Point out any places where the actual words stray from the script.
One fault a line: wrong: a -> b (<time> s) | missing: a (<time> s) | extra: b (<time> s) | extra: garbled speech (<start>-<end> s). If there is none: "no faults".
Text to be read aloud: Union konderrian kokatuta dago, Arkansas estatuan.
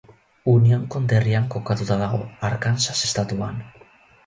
no faults